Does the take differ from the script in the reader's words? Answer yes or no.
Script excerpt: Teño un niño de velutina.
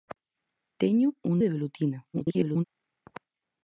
yes